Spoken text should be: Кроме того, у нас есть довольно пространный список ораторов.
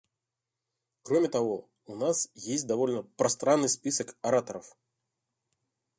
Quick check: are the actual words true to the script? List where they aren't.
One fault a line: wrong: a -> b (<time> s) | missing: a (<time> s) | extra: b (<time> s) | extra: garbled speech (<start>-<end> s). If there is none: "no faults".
no faults